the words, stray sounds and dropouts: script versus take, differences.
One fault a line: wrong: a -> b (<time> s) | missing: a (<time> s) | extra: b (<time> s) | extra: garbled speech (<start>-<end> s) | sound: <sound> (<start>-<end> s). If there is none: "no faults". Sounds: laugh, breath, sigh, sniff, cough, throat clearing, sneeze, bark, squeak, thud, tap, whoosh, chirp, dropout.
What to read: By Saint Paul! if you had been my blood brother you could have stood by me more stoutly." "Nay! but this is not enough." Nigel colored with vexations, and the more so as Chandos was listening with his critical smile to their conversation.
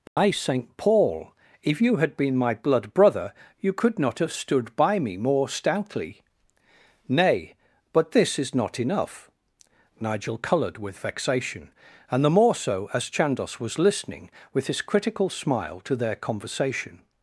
sound: dropout (0.1-0.2 s)
extra: not (4.0 s)
wrong: vexations -> vexation (11.0 s)